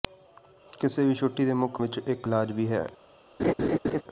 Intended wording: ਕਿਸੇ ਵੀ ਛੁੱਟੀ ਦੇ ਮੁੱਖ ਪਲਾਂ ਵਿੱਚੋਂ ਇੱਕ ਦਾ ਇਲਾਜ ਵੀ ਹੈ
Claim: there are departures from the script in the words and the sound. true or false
true